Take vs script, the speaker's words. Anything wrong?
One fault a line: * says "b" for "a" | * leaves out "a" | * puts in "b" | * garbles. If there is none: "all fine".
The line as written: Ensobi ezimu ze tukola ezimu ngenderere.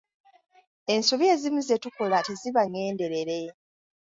* says "teziba" for "ezimu"